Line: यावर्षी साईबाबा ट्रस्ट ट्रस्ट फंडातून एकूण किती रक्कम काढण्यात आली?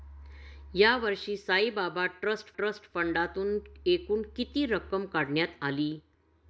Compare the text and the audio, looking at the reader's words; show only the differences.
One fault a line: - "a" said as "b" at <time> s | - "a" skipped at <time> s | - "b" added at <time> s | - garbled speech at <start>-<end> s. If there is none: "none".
none